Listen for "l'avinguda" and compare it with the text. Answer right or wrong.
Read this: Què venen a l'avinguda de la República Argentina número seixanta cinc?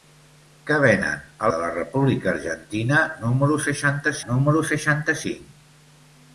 wrong